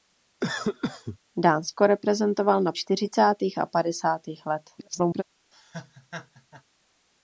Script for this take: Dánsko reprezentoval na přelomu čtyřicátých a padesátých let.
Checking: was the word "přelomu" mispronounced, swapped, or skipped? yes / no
yes